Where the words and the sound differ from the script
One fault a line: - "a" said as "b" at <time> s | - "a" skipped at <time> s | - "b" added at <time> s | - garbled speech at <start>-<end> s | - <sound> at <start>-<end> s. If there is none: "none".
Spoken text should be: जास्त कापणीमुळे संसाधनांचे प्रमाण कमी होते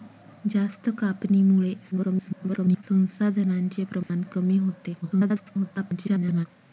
- garbled speech at 1.9-2.8 s
- dropout at 4.0-4.1 s
- garbled speech at 5.0-6.5 s